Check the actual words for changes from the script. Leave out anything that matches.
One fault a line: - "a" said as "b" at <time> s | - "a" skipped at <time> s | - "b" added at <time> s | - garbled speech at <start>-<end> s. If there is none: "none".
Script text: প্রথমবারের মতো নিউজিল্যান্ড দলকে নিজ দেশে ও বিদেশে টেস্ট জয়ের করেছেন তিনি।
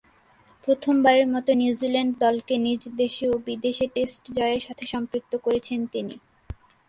- "সাথে সম্পৃক্ত" added at 4.6 s